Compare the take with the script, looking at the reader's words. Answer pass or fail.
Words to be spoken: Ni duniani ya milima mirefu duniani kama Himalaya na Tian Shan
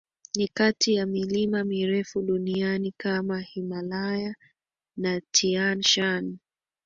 fail